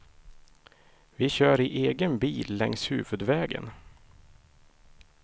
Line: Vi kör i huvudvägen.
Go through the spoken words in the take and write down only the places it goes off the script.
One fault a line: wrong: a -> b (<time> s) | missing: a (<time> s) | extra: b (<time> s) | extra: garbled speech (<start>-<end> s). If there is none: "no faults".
extra: egen bil längs (1.9 s)